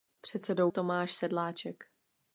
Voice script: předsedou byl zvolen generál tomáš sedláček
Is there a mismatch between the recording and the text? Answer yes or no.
yes